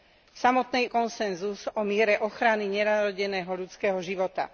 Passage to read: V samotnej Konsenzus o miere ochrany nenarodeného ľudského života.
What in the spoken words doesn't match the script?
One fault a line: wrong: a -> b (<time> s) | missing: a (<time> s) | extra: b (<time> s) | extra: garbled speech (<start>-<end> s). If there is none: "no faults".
no faults